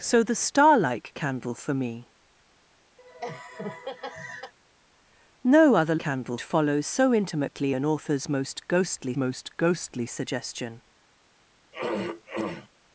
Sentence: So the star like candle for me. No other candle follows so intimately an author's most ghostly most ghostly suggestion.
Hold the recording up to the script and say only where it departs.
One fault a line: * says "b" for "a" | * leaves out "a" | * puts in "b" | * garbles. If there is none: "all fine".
all fine